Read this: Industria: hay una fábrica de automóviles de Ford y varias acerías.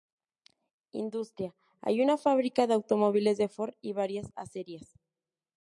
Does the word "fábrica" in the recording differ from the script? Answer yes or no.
no